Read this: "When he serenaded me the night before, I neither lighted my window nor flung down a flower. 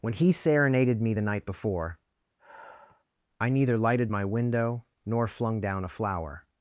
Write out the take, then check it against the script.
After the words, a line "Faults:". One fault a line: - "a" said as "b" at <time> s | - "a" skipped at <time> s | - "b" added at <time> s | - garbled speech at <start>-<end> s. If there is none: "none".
"When he serenaded me the night before, I neither lighted my window nor flung down a flower.
Faults:
none